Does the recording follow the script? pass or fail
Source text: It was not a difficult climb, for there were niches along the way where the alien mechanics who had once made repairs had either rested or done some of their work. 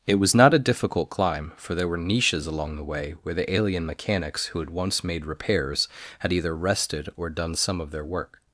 pass